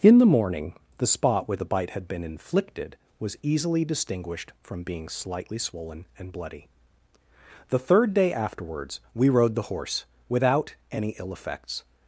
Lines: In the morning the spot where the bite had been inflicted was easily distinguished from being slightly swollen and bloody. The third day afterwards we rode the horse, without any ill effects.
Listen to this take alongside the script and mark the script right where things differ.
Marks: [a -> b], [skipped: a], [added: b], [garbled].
In the morning the spot where the bite had been inflicted was easily distinguished from being slightly swollen and bloody. The third day afterwards we rode the horse, without any ill effects.